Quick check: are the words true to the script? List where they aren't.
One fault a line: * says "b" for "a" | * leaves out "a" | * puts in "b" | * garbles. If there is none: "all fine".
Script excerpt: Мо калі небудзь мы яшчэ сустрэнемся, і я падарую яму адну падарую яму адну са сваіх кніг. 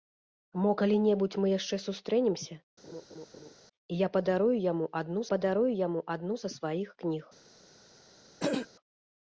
all fine